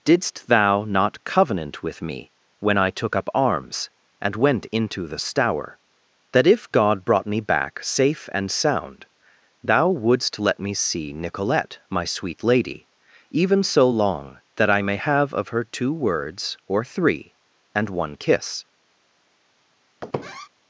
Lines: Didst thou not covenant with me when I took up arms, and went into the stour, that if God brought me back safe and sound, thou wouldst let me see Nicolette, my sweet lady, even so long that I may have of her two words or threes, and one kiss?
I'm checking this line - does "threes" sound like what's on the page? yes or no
no